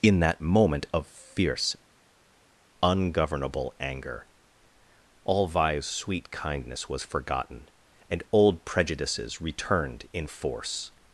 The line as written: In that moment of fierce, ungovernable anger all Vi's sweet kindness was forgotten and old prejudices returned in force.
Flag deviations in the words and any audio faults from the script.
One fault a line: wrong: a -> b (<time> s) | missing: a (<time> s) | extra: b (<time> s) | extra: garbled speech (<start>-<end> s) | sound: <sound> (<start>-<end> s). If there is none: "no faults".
no faults